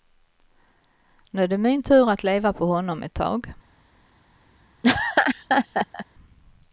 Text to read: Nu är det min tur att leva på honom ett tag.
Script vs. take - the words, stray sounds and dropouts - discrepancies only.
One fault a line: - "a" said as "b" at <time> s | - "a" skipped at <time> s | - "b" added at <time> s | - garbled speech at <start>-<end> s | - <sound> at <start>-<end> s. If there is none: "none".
- laugh at 4.8-6.1 s